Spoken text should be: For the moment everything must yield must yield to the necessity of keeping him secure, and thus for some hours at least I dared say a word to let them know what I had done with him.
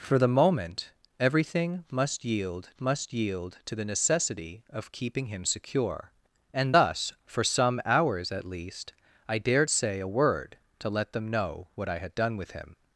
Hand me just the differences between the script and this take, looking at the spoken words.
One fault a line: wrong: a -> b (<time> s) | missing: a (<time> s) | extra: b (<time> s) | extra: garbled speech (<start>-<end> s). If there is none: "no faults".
no faults